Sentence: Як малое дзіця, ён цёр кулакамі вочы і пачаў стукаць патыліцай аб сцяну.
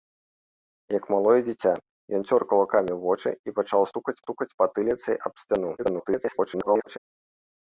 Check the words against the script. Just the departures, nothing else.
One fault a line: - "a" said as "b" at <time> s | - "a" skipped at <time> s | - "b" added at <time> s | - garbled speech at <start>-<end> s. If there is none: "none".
- "стукаць" added at 4.3 s
- garbled speech at 5.8-7.0 s